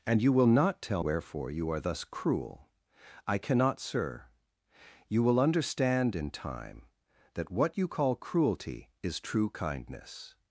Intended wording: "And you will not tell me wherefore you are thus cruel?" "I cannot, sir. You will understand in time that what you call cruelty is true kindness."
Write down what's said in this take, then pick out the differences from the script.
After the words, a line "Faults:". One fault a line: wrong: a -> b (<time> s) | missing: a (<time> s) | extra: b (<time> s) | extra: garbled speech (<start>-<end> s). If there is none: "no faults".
"And you will not tell wherefore you are thus cruel?" "I cannot, sir. You will understand in time that what you call cruelty is true kindness."
Faults:
missing: me (1.0 s)